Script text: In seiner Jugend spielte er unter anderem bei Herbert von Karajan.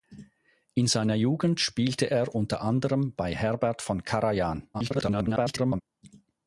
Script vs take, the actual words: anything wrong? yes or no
yes